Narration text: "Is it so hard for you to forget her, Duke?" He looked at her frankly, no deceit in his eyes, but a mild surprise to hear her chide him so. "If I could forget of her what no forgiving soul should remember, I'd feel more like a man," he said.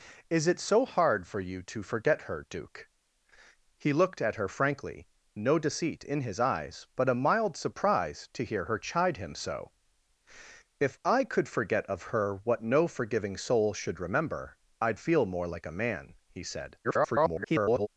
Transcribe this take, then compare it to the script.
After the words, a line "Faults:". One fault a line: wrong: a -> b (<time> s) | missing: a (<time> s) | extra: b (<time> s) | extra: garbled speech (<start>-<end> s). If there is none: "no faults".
"Is it so hard for you to forget her, Duke?" He looked at her frankly, no deceit in his eyes, but a mild surprise to hear her chide him so. "If I could forget of her what no forgiving soul should remember, I'd feel more like a man," he said. [garbled]
Faults:
extra: garbled speech (16.8-17.9 s)